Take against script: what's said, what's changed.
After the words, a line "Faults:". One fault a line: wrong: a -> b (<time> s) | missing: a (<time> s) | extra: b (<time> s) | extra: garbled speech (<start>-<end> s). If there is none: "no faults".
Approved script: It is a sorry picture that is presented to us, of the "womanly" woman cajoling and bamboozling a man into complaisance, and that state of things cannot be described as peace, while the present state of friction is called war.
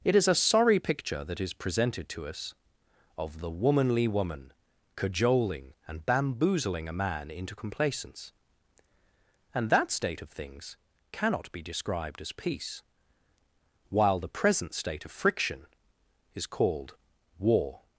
It is a sorry picture that is presented to us, of the "womanly" woman cajoling and bamboozling a man into complaisance, and that state of things cannot be described as peace, while the present state of friction is called war.
Faults:
no faults